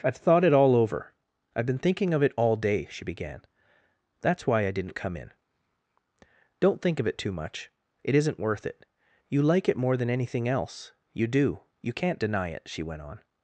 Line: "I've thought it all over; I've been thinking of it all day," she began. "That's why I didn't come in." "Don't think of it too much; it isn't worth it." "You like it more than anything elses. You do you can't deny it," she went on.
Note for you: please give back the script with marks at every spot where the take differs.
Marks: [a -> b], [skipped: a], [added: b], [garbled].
"I've thought it all over; I've been thinking of it all day," she began. "That's why I didn't come in." "Don't think of it too much; it isn't worth it." "You like it more than anything [elses. -> else] You do you can't deny it," she went on.